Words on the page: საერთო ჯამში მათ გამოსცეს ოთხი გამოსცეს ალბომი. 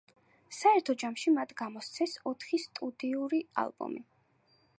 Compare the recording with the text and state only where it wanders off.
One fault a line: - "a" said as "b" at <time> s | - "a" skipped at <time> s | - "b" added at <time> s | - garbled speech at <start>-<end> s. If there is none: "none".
- "გამოსცეს" said as "სტუდიური" at 2.7 s